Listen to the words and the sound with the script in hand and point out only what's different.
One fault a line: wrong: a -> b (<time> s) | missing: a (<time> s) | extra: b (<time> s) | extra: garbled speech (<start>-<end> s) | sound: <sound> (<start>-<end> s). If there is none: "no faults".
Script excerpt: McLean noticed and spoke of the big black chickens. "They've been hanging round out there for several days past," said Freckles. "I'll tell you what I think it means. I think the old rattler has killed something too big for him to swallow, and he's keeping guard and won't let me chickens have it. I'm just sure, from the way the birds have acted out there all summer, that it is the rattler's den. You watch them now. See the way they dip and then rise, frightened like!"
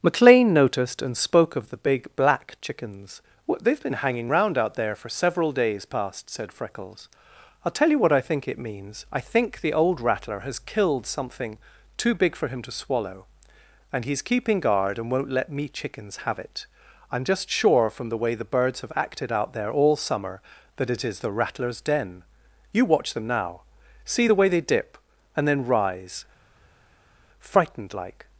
extra: well (3.5 s)